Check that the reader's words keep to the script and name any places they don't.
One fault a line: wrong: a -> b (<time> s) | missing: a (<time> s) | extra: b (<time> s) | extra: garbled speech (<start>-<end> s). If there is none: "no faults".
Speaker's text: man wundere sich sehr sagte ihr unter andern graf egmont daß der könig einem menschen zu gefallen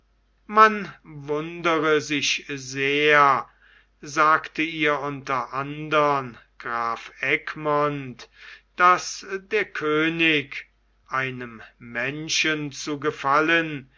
no faults